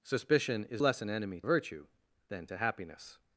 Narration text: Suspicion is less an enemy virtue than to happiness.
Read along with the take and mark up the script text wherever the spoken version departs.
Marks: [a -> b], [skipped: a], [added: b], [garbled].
Suspicion is less an enemy virtue than to happiness.